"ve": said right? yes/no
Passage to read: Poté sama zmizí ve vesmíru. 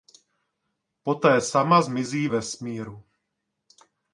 no